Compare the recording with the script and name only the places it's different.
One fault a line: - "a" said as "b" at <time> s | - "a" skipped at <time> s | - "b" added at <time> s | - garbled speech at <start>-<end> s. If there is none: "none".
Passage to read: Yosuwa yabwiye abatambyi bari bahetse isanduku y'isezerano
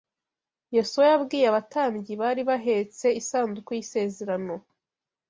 none